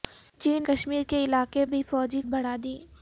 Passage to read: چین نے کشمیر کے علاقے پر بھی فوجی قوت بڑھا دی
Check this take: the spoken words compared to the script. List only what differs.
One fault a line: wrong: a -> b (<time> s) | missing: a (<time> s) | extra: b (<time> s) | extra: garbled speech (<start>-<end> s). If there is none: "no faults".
missing: نے (0.6 s)
missing: پر (1.7 s)
missing: قوت (2.2 s)